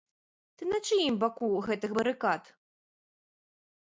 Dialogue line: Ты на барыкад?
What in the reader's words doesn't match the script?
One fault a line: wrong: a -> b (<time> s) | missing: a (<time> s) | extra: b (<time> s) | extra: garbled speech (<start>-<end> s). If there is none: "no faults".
extra: чыім баку гэтых (0.9 s)